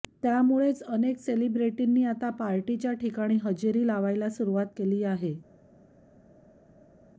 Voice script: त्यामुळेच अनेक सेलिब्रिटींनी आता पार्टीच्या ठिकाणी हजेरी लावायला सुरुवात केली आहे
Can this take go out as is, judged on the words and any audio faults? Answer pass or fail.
pass